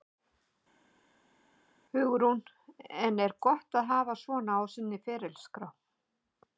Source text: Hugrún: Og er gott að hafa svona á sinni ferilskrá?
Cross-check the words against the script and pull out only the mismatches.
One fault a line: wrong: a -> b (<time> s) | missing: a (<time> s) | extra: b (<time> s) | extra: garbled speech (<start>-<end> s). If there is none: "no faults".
wrong: Og -> En (3.1 s)